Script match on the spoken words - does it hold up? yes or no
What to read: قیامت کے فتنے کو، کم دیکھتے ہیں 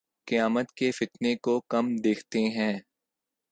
yes